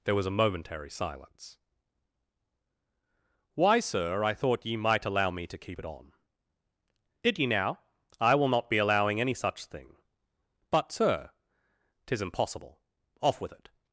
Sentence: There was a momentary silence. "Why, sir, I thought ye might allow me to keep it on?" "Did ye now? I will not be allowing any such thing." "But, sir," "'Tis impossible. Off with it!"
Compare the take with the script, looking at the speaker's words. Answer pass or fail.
pass